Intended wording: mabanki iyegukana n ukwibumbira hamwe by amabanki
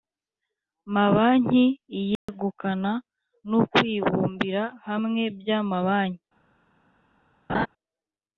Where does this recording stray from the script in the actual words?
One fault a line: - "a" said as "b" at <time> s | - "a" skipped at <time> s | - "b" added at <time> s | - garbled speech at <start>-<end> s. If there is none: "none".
none